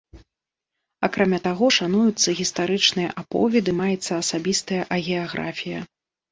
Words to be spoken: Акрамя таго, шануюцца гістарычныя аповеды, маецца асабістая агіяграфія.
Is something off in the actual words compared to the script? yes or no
no